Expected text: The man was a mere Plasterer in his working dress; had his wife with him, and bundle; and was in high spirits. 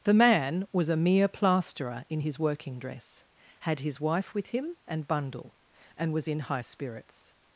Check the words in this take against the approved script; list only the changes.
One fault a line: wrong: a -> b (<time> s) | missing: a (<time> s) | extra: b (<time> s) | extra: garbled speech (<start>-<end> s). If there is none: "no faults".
no faults